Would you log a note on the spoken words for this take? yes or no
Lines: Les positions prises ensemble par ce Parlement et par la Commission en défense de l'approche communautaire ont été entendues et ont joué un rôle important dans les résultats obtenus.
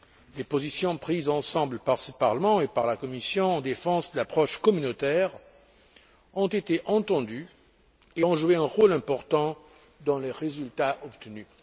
no